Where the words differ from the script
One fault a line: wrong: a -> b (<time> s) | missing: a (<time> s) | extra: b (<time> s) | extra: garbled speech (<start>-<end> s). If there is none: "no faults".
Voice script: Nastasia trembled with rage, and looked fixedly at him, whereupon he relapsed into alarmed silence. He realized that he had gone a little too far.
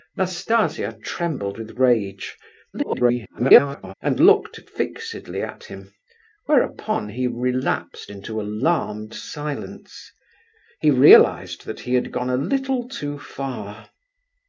extra: garbled speech (2.7-3.9 s)